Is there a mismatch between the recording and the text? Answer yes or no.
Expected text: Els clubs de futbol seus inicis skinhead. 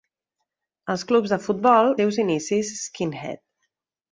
no